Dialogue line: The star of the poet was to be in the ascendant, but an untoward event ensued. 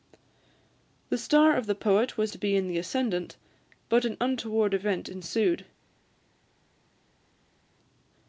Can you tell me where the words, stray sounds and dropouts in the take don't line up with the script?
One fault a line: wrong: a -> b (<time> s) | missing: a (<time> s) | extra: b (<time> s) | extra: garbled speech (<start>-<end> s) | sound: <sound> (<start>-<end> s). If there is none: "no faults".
no faults